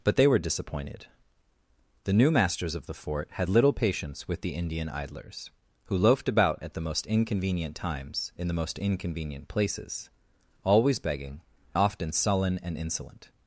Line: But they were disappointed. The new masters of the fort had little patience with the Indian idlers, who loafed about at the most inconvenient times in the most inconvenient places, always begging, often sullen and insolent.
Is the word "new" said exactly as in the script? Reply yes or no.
yes